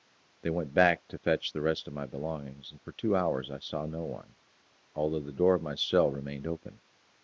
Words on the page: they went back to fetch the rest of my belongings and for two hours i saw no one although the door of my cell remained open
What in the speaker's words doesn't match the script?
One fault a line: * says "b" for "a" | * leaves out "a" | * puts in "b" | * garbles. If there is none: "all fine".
all fine